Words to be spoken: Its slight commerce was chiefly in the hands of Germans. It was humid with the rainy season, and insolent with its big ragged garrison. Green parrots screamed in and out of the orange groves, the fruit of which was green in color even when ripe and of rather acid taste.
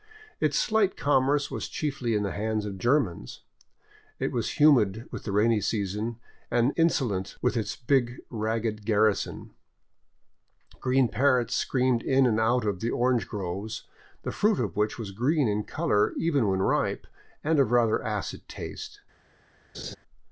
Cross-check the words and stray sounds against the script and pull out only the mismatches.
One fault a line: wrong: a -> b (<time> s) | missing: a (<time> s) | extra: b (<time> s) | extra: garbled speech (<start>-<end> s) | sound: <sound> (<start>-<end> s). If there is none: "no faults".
sound: laugh (19.7-20.0 s)